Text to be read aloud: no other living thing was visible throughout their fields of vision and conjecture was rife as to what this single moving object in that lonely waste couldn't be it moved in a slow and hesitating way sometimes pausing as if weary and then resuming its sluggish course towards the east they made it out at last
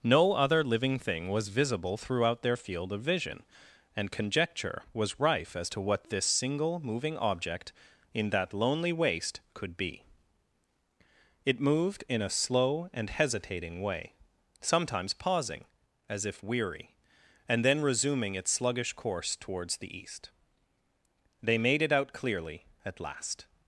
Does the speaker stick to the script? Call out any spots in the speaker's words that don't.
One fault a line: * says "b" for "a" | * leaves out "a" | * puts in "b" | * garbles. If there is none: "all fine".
* says "field" for "fields"
* says "could" for "couldn't"
* puts in "clearly"